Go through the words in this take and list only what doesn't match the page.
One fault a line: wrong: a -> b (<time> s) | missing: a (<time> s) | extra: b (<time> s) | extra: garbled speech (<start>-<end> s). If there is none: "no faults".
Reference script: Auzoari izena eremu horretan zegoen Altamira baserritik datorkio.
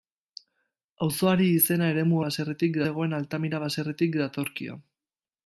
wrong: horretan -> baserritik (2.3 s)